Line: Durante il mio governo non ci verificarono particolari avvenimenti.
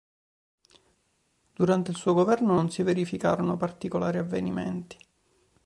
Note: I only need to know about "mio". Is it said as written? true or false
false